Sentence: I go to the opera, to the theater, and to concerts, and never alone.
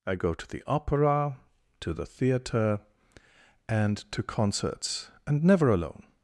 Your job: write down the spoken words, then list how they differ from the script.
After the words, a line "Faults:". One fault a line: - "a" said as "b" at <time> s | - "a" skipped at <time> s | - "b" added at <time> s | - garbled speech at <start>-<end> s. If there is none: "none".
I go to the opera, to the theater, and to concerts, and never alone.
Faults:
none